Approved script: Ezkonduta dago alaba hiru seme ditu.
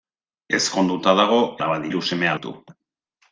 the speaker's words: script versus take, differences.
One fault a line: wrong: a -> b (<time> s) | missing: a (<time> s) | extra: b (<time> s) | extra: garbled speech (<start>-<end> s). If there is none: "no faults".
no faults